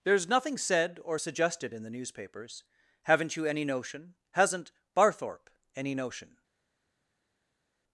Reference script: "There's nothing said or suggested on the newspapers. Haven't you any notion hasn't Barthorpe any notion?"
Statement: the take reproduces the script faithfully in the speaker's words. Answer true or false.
false